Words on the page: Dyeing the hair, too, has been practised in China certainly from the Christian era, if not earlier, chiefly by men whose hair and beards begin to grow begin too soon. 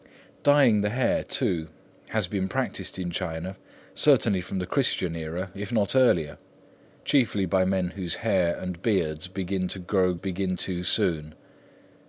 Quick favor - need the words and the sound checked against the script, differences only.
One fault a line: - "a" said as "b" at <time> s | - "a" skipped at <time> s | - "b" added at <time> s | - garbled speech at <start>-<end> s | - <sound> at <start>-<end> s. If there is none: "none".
none